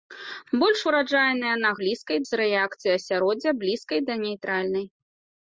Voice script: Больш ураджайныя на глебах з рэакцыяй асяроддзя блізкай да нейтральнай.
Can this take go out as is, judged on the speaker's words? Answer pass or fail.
fail